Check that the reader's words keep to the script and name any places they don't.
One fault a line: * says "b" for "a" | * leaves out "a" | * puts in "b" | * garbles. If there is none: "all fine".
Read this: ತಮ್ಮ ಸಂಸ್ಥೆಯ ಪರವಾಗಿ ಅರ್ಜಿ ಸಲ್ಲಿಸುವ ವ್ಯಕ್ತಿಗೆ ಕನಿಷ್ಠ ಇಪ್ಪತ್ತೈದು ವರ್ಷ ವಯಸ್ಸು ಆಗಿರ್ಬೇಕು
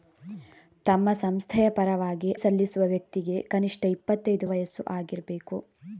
* leaves out "ಅರ್ಜಿ"
* leaves out "ವರ್ಷ"